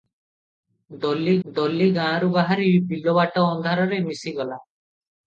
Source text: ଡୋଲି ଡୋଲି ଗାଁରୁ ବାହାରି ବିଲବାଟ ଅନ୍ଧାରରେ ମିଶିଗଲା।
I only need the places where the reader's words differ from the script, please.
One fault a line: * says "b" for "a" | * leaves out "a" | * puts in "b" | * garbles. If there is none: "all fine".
all fine